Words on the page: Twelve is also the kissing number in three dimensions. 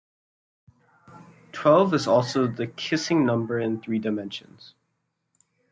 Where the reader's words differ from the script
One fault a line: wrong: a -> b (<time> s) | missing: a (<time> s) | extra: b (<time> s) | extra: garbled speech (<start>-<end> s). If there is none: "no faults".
no faults